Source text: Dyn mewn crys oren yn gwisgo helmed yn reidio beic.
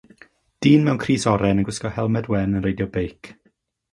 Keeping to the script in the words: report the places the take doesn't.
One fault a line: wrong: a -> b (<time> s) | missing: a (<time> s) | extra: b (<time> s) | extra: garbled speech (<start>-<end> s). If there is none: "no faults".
extra: wen (2.4 s)